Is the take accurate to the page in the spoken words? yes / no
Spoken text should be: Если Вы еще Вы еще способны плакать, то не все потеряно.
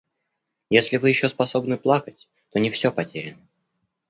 no